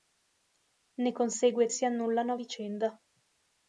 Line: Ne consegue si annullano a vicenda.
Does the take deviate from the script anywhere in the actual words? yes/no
no